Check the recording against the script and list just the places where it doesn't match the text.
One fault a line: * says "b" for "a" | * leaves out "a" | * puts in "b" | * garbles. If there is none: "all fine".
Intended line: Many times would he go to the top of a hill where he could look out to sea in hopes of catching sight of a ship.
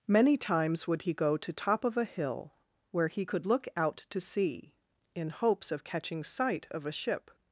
* leaves out "the"